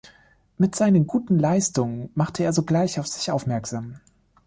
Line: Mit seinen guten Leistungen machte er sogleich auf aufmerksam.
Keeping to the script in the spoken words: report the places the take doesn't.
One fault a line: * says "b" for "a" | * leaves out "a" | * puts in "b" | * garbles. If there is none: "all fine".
* puts in "sich"